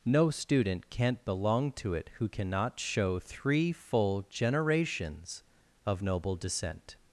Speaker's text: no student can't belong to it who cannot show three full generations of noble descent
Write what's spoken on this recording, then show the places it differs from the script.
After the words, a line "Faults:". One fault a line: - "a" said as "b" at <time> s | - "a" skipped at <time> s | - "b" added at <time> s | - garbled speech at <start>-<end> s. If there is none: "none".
no student can't belong to it who cannot show three full generations of noble descent
Faults:
none